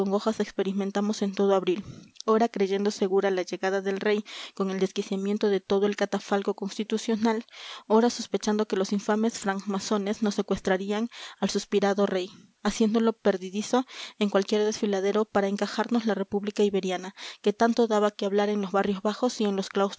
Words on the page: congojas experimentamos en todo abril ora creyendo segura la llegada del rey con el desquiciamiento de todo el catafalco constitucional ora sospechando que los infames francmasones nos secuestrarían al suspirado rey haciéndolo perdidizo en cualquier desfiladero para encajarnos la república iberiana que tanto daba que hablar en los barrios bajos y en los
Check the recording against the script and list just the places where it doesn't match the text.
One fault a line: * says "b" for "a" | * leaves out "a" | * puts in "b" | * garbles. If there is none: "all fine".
all fine